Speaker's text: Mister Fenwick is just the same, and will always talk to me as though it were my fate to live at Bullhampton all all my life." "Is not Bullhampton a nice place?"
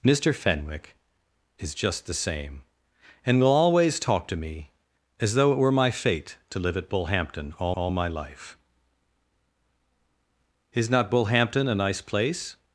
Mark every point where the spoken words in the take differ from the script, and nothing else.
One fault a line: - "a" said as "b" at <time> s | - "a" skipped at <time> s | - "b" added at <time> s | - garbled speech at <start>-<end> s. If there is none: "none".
none